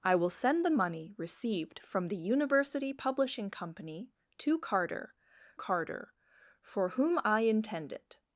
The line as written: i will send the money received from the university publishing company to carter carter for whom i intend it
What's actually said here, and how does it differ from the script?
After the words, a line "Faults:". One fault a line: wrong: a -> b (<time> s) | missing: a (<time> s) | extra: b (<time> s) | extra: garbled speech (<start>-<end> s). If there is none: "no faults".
i will send the money received from the university publishing company to carter carter for whom i intend it
Faults:
no faults